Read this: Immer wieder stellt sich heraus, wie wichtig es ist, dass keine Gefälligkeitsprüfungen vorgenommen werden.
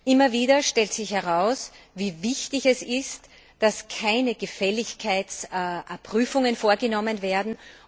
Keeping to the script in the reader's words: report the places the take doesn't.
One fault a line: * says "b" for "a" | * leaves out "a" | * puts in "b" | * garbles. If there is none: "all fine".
all fine